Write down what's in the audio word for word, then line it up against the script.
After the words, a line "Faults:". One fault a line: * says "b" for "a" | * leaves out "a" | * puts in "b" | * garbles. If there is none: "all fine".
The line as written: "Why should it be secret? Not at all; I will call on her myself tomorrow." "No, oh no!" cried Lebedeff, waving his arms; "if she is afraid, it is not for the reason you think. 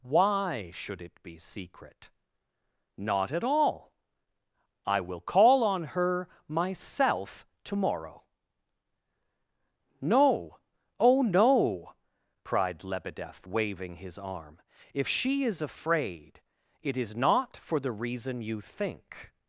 "Why should it be secret? Not at all; I will call on her myself tomorrow." "No, oh no!" cried Lebedeff, waving his arm; "if she is afraid, it is not for the reason you think.
Faults:
* says "arm" for "arms"